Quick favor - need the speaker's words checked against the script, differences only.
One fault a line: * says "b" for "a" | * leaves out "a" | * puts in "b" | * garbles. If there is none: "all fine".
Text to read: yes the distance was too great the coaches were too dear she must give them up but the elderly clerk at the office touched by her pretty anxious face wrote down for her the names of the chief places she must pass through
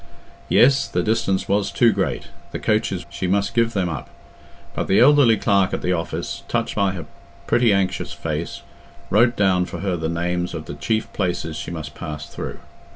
* leaves out "were too dear"